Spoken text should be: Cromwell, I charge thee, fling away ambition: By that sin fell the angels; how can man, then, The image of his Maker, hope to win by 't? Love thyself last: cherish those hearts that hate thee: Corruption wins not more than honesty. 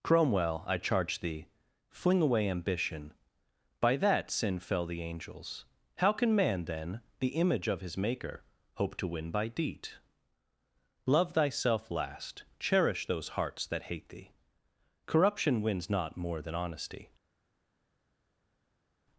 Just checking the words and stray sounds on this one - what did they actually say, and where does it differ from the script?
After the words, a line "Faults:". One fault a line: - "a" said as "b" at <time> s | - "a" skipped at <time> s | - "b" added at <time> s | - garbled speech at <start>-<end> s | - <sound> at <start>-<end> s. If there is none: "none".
Cromwell, I charge thee, fling away ambition: By that sin fell the angels; how can man, then, The image of his Maker, hope to win by 'deed? Love thyself last: cherish those hearts that hate thee: Corruption wins not more than honesty.
Faults:
- "t" said as "deed" at 9.5 s